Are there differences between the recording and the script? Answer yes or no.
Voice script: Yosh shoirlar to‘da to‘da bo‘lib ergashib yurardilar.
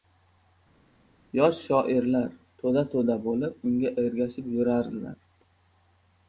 yes